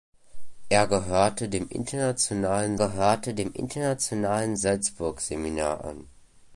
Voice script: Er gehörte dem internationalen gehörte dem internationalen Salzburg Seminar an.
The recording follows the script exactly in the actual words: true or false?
true